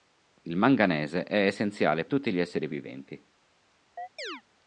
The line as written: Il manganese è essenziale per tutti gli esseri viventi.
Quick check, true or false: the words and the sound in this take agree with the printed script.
false